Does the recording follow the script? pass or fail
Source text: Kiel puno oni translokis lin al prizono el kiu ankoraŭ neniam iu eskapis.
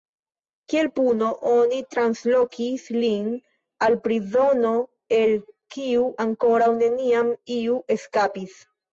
pass